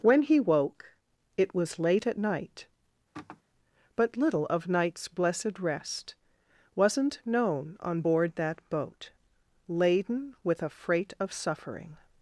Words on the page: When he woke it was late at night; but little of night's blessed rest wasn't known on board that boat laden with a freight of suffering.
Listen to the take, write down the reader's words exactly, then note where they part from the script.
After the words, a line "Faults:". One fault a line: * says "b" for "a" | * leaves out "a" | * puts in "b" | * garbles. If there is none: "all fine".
When he woke it was late at night; but little of night's blessed rest wasn't known on board that boat laden with a freight of suffering.
Faults:
all fine